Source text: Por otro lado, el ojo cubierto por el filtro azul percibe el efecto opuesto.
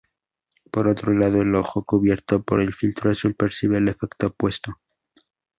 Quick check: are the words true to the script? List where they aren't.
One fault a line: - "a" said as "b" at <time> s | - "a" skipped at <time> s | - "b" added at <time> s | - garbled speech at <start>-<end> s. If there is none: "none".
none